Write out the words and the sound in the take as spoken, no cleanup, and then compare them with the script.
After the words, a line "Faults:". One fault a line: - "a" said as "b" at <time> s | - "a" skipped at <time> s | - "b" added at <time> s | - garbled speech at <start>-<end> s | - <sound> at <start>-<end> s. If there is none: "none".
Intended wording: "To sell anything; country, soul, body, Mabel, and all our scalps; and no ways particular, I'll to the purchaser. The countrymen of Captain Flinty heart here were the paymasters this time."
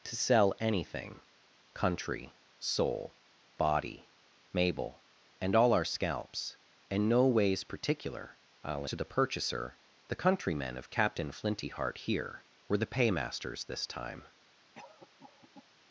"To sell anything; country, soul, body, Mabel, and all our scalps; and no ways particular, I'll to the purchaser. The countrymen of Captain Flinty heart here were the paymasters this time."
Faults:
- cough at 14.7-15.7 s